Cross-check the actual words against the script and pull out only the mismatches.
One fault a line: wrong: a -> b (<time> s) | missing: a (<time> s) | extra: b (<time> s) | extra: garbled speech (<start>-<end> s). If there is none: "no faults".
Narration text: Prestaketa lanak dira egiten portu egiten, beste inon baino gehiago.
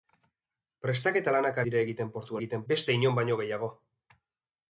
no faults